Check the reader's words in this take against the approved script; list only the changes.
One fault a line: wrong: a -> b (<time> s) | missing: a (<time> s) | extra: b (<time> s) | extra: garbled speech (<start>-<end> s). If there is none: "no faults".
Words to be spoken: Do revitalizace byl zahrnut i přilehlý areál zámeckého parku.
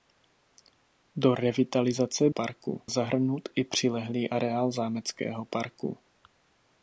wrong: byl -> parku (2.3 s)